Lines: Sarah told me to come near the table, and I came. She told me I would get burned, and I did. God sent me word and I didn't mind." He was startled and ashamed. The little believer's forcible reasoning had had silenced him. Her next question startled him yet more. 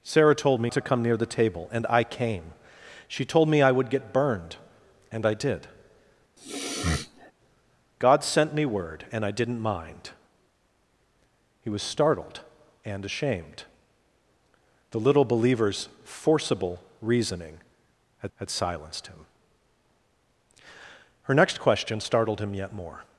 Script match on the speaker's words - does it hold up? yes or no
yes